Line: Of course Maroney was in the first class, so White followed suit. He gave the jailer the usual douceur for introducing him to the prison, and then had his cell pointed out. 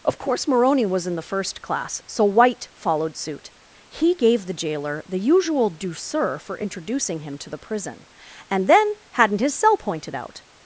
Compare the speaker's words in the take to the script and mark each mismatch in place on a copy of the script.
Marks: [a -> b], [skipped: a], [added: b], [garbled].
Of course Maroney was in the first class, so White followed suit. He gave the jailer the usual douceur for introducing him to the prison, and then [had -> hadn't] his cell pointed out.